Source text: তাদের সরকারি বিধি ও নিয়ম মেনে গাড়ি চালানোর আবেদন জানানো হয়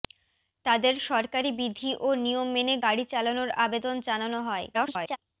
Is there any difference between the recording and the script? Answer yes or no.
yes